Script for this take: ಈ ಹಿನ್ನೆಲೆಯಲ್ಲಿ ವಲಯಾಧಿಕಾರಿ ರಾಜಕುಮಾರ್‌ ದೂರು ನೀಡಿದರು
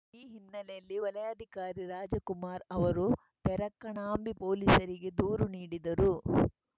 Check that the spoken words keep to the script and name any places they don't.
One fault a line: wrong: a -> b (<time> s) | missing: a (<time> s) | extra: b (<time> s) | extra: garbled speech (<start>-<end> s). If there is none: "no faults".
extra: ಅವರು ತೆರಕಣಾಂಬಿ ಪೊಲೀಸರಿಗೆ (2.7 s)